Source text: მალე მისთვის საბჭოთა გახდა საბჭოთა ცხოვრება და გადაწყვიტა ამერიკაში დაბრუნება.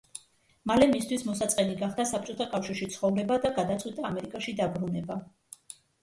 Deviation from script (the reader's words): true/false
true